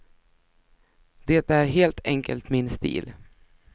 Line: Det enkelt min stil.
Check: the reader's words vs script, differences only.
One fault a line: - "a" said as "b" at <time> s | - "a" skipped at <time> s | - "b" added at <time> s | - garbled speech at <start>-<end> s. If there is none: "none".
- "är helt" added at 1.5 s